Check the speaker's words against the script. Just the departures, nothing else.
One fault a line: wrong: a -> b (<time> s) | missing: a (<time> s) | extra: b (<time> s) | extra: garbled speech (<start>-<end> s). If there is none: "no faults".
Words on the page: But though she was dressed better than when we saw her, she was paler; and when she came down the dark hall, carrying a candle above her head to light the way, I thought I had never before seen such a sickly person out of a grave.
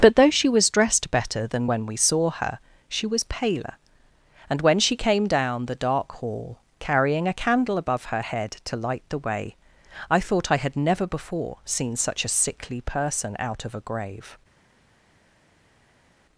no faults